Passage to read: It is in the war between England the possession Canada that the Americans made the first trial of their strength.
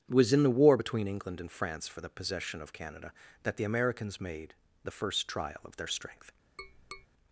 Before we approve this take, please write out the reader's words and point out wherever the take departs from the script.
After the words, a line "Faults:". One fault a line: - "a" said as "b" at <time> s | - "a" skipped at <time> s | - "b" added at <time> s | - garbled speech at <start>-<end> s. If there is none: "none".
It was in the war between England and France for the possession of Canada that the Americans made the first trial of their strength.
Faults:
- "is" said as "was" at 0.1 s
- "and France for" added at 1.4 s
- "of" added at 2.6 s